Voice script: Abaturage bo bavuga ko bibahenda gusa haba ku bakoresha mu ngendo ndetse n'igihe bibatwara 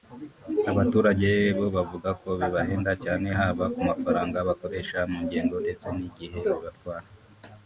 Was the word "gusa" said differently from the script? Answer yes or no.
yes